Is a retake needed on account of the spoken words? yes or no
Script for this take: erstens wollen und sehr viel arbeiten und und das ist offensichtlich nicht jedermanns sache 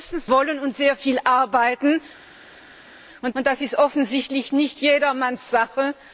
no